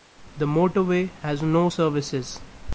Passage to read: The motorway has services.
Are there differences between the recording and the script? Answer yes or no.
yes